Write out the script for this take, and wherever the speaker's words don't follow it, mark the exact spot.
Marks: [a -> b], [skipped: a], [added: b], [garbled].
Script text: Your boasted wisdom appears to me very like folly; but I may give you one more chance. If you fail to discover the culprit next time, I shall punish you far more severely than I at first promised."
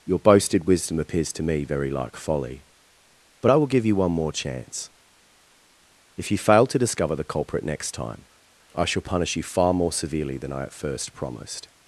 Your boasted wisdom appears to me very like folly; but I [may -> will] give you one more chance. If you fail to discover the culprit next time, I shall punish you far more severely than I at first promised."